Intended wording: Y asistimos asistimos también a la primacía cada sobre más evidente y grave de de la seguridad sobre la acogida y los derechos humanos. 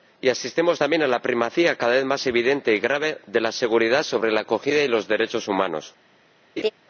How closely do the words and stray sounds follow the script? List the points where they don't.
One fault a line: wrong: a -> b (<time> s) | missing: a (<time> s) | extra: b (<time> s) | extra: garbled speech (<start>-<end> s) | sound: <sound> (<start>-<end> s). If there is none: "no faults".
missing: asistimos (0.8 s)
wrong: sobre -> vez (1.9 s)
missing: de (3.4 s)
sound: laugh (6.6-6.7 s)